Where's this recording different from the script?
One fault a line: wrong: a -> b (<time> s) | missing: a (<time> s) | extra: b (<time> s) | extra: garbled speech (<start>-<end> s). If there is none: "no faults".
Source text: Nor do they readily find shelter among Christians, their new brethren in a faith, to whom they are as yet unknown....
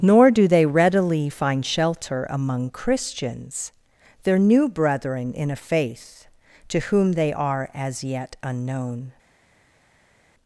no faults